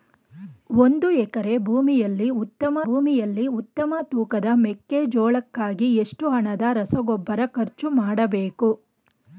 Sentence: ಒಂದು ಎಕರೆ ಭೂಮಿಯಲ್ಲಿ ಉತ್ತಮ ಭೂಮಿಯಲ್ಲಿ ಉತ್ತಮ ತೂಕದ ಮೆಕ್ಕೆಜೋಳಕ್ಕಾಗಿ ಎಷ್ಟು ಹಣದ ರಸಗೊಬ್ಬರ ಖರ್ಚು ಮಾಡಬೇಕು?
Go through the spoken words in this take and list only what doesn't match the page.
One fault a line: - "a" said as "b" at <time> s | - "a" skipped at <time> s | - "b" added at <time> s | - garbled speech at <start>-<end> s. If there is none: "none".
none